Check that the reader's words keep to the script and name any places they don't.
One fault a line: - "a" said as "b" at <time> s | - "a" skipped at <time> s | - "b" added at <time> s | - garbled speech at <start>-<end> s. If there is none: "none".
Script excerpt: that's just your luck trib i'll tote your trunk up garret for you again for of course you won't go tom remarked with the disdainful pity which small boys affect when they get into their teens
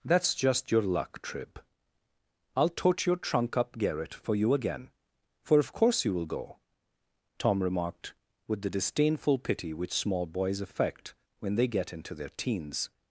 - "won't" said as "will" at 6.1 s